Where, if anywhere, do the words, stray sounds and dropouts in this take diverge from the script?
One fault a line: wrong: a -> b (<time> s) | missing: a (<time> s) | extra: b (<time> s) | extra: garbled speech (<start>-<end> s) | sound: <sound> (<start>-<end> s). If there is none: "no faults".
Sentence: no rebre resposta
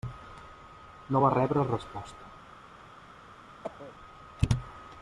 extra: va (1.2 s)
sound: cough (3.6-3.9 s)